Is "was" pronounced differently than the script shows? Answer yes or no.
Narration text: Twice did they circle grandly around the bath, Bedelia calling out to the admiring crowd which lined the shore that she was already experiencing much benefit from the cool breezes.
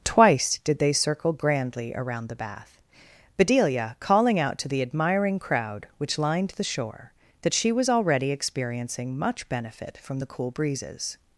no